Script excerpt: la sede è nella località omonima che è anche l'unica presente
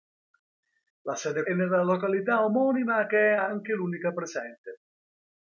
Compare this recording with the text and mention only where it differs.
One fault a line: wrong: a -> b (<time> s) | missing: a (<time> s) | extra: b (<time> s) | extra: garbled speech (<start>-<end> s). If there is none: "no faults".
no faults